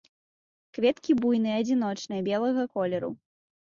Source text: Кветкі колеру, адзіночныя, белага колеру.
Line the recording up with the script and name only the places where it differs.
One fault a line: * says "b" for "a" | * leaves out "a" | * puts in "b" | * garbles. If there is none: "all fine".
* says "буйныя" for "колеру"